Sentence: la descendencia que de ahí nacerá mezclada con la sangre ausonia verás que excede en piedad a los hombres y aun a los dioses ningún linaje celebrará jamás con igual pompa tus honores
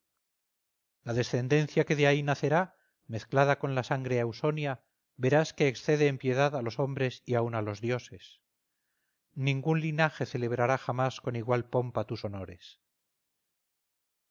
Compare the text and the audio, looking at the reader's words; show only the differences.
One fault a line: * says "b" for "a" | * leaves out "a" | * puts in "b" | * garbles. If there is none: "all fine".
all fine